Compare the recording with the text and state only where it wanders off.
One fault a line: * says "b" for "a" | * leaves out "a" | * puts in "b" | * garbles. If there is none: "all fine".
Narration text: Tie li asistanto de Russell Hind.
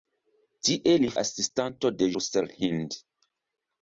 all fine